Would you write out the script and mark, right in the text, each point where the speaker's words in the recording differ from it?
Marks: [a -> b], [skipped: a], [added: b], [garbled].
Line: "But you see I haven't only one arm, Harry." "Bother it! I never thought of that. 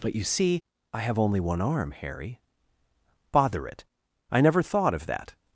"But you see I [haven't -> have] only one arm, Harry." "Bother it! I never thought of that.